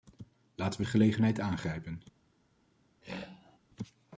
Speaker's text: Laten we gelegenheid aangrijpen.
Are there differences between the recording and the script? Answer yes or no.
no